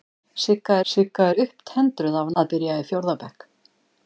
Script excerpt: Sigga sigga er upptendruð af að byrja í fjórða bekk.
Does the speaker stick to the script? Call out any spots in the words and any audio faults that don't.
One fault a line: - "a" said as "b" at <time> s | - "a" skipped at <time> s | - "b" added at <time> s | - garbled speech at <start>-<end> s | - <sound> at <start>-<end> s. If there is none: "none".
none